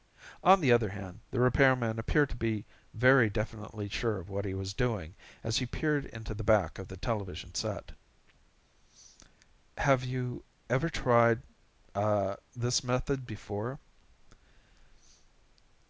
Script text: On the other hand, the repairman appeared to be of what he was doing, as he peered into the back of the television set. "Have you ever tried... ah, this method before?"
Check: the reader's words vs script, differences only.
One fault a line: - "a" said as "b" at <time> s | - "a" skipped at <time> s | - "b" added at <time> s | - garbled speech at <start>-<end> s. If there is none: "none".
- "very definitely sure" added at 2.9 s